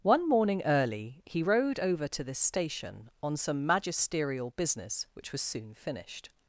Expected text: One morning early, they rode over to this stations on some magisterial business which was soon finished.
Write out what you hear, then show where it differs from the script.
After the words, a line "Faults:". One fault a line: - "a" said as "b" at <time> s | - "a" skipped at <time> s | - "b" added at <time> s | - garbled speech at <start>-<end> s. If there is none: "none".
One morning early, he rode over to this station on some magisterial business which was soon finished.
Faults:
- "they" said as "he" at 1.2 s
- "stations" said as "station" at 2.4 s